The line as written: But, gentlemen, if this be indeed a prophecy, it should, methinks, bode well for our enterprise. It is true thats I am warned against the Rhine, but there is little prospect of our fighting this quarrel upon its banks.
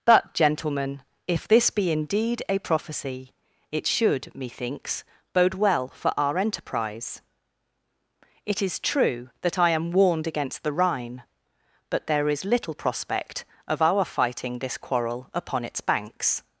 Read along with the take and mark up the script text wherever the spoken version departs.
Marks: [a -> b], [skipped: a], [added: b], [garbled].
But, gentlemen, if this be indeed a prophecy, it should, methinks, bode well for our enterprise. It is true [thats -> that] I am warned against the Rhine, but there is little prospect of our fighting this quarrel upon its banks.